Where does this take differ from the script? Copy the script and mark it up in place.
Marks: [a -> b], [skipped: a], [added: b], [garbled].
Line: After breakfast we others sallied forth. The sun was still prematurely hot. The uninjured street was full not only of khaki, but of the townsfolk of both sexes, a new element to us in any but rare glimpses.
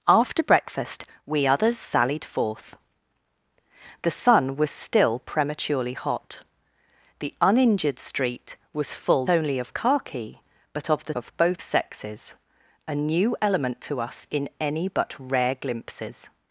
After breakfast we others sallied forth. The sun was still prematurely hot. The uninjured street was full [skipped: not] only of khaki, but of the [skipped: townsfolk] of both sexes, a new element to us in any but rare glimpses.